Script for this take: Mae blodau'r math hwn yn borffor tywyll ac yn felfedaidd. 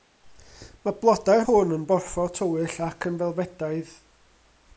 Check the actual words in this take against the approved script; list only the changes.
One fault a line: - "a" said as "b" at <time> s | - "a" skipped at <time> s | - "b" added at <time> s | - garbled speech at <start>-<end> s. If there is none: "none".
- "math" skipped at 1.4 s